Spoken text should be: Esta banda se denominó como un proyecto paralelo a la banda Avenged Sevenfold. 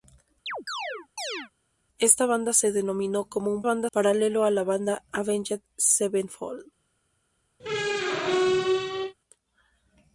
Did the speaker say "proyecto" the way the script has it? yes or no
no